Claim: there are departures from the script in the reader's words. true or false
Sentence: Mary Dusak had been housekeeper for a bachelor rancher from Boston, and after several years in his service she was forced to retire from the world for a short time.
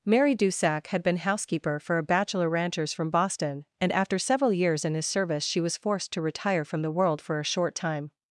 true